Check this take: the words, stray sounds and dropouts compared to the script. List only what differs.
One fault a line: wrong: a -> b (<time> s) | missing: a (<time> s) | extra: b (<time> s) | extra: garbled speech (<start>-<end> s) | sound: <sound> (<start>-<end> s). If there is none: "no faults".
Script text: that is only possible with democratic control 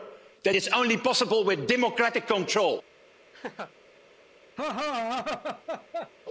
sound: laugh (3.3-3.7 s)
sound: laugh (4.6-6.1 s)